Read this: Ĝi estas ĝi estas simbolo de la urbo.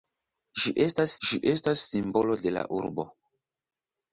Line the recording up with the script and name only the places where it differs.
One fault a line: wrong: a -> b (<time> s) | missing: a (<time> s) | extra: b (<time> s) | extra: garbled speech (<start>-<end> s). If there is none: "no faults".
no faults